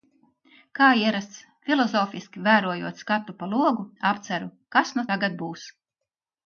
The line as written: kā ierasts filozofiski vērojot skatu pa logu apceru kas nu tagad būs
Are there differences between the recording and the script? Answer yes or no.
no